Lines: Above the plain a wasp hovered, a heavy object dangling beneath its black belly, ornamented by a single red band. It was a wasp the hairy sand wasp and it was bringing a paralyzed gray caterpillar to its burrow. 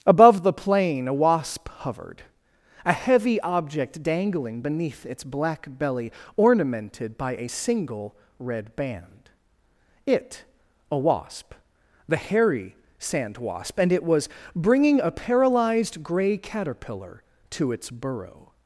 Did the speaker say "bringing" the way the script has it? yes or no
yes